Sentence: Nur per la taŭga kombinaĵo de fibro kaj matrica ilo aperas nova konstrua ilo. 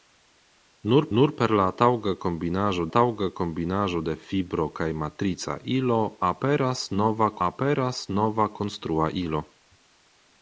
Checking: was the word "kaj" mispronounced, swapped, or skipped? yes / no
no